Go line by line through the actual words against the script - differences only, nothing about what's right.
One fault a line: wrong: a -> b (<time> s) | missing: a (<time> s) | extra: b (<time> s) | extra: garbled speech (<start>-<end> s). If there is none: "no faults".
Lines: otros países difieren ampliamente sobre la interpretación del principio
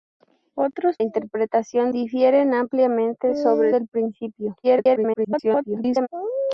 wrong: países -> interpretación (1.0 s)
missing: la interpretación (3.7 s)
extra: garbled speech (4.6-6.1 s)